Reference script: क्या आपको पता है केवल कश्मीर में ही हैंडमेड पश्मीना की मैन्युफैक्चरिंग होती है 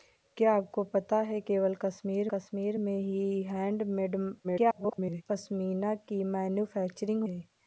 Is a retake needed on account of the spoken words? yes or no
yes